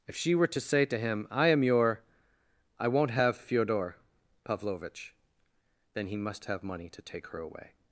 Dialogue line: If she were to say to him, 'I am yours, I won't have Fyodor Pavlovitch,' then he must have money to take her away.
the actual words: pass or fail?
fail